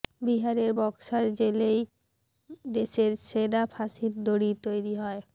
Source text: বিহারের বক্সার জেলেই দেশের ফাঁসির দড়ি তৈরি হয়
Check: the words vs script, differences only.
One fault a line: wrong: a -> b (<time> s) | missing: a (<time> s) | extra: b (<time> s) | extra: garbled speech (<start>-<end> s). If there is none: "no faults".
extra: সেরা (3.3 s)